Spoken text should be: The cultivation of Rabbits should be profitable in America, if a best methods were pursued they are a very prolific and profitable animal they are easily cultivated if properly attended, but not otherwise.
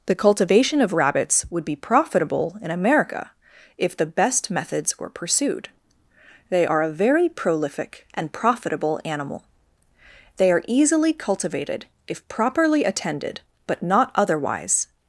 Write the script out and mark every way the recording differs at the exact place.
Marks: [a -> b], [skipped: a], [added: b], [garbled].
The cultivation of Rabbits [should -> would] be profitable in America, if [a -> the] best methods were pursued they are a very prolific and profitable animal they are easily cultivated if properly attended, but not otherwise.